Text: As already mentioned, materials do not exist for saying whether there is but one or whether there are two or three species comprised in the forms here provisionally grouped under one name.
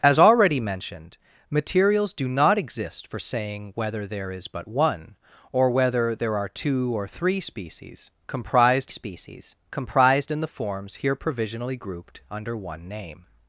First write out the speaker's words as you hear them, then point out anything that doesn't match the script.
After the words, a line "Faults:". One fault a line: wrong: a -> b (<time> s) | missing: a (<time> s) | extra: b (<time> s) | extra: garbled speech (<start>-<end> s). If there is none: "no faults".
As already mentioned, materials do not exist for saying whether there is but one or whether there are two or three species comprised species comprised in the forms here provisionally grouped under one name.
Faults:
extra: species comprised (8.9 s)